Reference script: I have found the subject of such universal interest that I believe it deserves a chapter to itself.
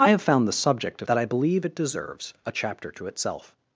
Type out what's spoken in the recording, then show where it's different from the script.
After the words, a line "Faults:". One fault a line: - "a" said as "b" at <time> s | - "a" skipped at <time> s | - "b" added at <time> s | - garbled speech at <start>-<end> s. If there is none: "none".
I have found the subject of that I believe it deserves a chapter to itself.
Faults:
- "such universal interest" skipped at 1.1 s